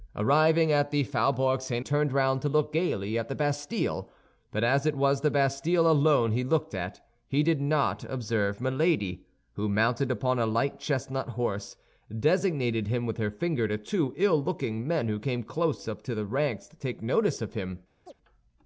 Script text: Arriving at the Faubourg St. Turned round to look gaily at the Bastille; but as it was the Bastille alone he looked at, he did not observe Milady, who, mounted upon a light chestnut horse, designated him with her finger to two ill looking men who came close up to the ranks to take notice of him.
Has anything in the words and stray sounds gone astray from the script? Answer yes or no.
yes